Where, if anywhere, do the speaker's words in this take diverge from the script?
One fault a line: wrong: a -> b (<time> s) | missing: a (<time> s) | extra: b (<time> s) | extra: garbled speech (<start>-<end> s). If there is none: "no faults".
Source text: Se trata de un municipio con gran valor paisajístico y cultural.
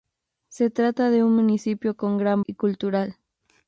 missing: valor paisajístico (2.4 s)